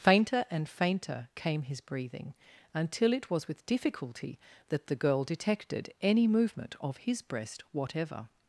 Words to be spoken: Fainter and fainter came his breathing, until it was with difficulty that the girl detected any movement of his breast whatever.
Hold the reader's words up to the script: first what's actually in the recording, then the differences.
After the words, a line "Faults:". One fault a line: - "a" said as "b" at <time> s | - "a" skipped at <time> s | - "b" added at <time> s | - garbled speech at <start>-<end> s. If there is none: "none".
Fainter and fainter came his breathing, until it was with difficulty that the girl detected any movement of his breast whatever.
Faults:
none